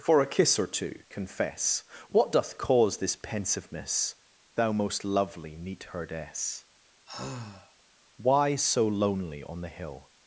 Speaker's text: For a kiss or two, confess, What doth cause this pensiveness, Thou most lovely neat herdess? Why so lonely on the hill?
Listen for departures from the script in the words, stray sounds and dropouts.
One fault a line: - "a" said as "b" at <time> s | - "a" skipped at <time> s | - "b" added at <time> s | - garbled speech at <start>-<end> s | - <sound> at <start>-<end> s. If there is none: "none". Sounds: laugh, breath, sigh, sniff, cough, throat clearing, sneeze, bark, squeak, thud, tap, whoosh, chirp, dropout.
- sigh at 7.1-7.8 s